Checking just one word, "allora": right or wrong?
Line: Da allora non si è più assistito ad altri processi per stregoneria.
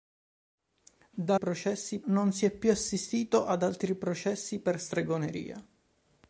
wrong